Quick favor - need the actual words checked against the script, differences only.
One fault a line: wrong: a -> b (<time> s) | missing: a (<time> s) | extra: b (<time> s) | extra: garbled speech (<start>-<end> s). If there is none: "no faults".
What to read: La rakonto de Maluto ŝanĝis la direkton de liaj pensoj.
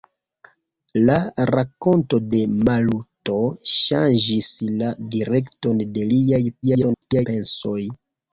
extra: garbled speech (6.6-7.3 s)